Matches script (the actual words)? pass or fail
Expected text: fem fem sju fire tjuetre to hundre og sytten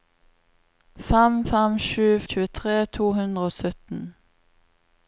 fail